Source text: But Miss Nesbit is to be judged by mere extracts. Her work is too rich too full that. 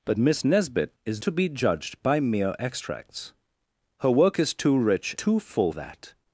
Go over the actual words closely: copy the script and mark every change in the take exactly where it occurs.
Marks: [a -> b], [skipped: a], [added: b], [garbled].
But Miss Nesbit is to be judged by mere extracts. Her work is too rich too full that.